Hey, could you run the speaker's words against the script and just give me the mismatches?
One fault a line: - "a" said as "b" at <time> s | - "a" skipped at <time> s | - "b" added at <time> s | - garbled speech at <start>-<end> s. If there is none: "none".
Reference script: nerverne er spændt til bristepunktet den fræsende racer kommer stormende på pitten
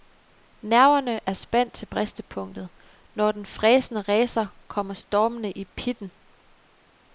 - "når" added at 3.1 s
- "på" said as "i" at 5.5 s